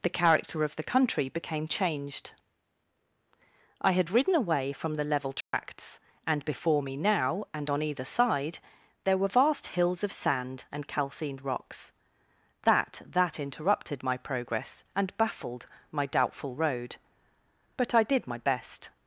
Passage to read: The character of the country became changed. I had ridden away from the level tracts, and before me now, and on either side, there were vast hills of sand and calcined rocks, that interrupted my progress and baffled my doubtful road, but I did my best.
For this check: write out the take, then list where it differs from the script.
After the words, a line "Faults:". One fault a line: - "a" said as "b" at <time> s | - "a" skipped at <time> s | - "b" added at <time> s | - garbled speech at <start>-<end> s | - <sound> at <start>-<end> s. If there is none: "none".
The character of the country became changed. I had ridden away from the level tracts, and before me now, and on either side, there were vast hills of sand and calcined rocks, that that interrupted my progress and baffled my doubtful road, but I did my best.
Faults:
- dropout at 5.4-5.5 s
- "that" added at 13.1 s